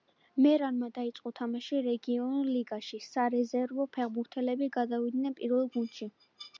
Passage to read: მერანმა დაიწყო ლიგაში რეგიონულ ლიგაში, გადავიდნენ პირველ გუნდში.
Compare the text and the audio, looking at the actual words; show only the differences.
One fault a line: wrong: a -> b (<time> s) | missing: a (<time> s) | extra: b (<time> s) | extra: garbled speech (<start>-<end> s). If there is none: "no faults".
wrong: ლიგაში -> თამაში (1.4 s)
extra: სარეზერვო ფეხბურთელები (3.1 s)